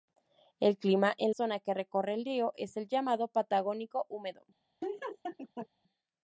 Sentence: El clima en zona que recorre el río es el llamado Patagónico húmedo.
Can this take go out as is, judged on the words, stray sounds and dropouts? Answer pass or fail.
fail